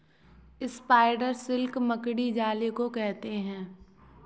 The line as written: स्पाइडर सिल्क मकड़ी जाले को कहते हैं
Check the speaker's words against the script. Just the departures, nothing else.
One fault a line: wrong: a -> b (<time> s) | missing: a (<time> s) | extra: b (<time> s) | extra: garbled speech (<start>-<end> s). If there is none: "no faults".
no faults